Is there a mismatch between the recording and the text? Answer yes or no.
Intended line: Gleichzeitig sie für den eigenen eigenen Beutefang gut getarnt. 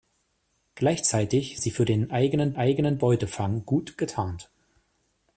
no